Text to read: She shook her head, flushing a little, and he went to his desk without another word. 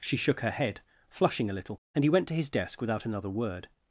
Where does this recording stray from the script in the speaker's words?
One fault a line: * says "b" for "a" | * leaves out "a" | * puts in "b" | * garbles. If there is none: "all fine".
all fine